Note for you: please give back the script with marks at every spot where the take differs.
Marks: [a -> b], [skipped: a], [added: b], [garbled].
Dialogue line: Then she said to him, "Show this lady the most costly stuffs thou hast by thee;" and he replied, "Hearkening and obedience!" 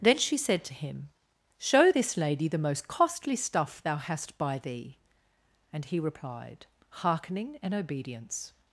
Then she said to him, "Show this lady the most costly [stuffs -> stuff] thou hast by thee;" and he replied, "Hearkening and obedience!"